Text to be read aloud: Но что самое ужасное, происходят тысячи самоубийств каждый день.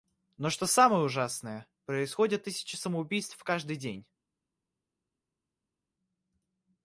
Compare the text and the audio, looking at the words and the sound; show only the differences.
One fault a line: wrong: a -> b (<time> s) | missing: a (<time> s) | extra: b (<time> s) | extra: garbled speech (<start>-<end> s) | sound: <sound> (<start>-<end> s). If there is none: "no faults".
no faults